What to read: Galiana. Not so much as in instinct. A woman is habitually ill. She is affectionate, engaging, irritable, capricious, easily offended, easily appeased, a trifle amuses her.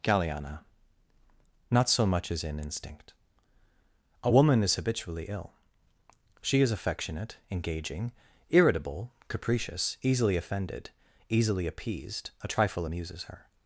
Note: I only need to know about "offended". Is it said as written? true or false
true